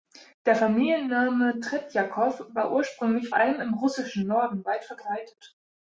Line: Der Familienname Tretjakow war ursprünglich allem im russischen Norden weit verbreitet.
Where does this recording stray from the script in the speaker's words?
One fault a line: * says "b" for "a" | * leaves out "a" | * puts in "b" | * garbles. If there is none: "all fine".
all fine